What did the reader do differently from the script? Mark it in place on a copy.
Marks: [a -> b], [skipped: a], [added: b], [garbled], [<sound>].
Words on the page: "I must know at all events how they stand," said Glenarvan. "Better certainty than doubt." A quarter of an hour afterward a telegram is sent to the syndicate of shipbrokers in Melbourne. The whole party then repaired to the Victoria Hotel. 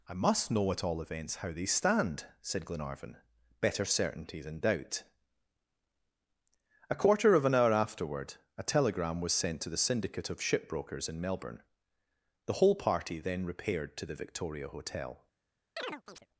"I must know at all events how they stand," said Glenarvan. "Better certainty than doubt." A quarter of an hour afterward a telegram [is -> was] sent to the syndicate of shipbrokers in Melbourne. The whole party then repaired to the Victoria Hotel. [chirp]